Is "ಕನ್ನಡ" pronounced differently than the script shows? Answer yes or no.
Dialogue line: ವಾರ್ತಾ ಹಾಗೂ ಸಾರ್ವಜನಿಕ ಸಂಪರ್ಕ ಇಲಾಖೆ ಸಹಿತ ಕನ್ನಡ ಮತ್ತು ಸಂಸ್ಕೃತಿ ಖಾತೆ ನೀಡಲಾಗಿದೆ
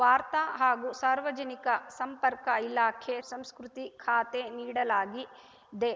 yes